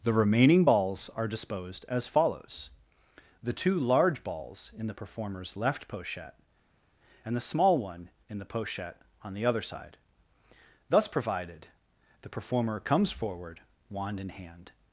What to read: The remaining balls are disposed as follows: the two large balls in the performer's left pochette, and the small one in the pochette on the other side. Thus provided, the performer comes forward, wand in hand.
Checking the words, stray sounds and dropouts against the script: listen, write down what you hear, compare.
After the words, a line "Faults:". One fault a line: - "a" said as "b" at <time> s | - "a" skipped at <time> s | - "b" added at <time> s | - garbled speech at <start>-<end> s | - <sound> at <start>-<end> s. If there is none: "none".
The remaining balls are disposed as follows: the two large balls in the performer's left pochette, and the small one in the pochette on the other side. Thus provided, the performer comes forward, wand in hand.
Faults:
none